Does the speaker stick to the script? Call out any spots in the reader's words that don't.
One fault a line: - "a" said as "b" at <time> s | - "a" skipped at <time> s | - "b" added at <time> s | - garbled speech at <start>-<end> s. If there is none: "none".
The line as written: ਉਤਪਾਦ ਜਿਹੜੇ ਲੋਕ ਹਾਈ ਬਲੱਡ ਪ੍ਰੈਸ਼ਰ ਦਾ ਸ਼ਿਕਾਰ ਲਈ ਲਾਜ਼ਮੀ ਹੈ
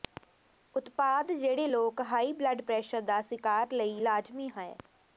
none